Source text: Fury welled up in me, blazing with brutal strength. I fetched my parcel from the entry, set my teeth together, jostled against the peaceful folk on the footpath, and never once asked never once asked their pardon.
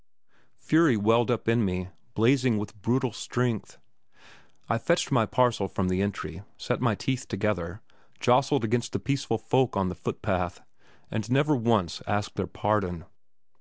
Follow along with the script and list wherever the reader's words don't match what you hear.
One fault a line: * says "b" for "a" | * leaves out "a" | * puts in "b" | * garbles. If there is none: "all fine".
* leaves out "never once asked"